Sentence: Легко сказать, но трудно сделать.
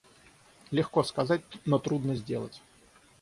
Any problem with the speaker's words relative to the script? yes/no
no